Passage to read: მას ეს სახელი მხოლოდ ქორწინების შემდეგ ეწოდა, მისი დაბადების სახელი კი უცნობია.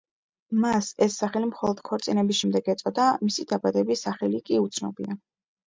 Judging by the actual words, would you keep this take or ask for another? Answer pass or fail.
pass